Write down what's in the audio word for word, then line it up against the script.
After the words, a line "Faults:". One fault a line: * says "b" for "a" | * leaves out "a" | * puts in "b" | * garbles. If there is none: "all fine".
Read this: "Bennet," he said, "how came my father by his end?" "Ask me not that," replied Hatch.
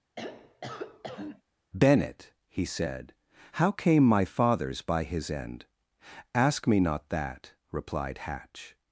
"Bennet," he said, "how came my fathers by his end?" "Ask me not that," replied Hatch.
Faults:
* says "fathers" for "father"